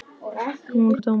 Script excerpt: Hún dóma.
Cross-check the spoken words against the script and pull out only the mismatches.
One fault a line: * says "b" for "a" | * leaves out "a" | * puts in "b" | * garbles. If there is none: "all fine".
all fine